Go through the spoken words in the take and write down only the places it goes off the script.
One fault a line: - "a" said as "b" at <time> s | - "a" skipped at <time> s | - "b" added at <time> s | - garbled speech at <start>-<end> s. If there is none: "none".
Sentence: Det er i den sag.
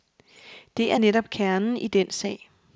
- "netop kernen" added at 1.0 s